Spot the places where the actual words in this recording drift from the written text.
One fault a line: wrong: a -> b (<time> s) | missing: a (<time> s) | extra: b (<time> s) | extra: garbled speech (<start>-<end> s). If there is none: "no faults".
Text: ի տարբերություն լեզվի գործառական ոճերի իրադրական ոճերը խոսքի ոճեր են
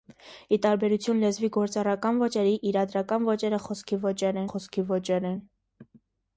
extra: խոսքի ոճեր (4.5 s)